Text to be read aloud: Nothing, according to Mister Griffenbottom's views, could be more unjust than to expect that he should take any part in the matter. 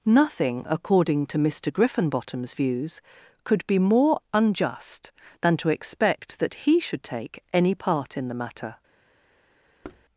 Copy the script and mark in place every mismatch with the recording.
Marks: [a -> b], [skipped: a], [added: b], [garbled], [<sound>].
Nothing, according to Mister Griffenbottom's views, could be more unjust than to expect that he should take any part in the matter. [thud]